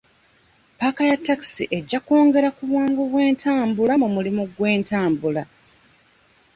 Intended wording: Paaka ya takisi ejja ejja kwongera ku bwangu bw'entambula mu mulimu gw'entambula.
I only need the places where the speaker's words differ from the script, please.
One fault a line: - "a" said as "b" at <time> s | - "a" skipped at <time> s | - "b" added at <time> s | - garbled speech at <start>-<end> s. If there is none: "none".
- "ejja" skipped at 2.0 s